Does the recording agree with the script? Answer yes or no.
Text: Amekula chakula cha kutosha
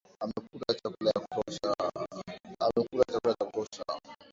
yes